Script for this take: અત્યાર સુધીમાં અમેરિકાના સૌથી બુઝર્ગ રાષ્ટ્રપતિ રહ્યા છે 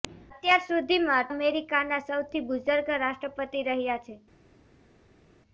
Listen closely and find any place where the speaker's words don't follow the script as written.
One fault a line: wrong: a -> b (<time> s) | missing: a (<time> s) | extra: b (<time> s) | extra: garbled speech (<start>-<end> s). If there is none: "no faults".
no faults